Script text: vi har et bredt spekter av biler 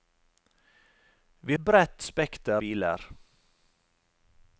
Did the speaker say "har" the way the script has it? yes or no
no